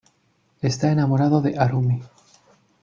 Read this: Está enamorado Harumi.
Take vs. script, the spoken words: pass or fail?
fail